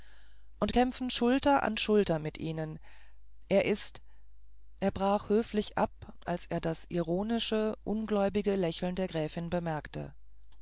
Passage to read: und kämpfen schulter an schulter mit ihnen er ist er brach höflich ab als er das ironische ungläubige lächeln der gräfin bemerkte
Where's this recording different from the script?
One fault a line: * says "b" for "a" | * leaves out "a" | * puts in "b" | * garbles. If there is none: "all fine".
all fine